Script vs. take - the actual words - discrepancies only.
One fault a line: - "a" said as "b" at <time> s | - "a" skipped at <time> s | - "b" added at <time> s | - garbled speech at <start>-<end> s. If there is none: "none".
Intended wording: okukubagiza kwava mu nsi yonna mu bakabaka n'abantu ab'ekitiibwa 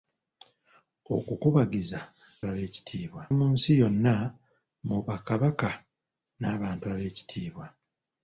- "kwava" said as "ab'ekitiibwa" at 2.5 s